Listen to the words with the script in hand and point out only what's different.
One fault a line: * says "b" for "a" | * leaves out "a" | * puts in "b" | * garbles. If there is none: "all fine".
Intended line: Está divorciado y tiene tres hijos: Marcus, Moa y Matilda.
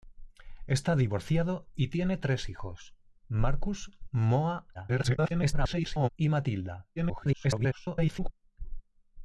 * garbles
* garbles